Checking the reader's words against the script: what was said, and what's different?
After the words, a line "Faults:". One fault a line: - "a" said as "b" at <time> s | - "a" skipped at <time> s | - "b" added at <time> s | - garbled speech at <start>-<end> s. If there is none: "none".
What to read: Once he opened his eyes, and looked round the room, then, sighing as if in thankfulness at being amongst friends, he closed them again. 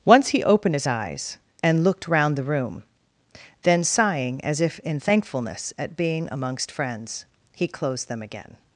Once he opened his eyes, and looked round the room, then, sighing as if in thankfulness at being amongst friends, he closed them again.
Faults:
none